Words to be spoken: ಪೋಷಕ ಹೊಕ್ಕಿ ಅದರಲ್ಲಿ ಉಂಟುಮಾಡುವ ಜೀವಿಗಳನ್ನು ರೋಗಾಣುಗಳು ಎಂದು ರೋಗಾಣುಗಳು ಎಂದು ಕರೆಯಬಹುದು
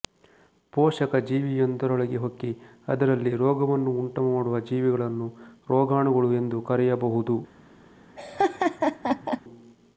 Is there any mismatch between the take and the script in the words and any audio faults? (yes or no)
yes